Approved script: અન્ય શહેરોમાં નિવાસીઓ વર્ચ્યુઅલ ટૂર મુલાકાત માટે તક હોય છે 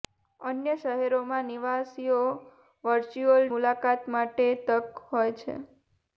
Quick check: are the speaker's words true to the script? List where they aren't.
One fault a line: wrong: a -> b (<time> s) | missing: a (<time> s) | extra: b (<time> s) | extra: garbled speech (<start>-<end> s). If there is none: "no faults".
missing: ટૂર (3.5 s)